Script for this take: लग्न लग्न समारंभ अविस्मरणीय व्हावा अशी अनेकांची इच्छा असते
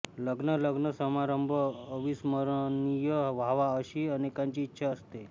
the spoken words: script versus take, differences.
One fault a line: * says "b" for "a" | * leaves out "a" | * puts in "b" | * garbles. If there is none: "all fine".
all fine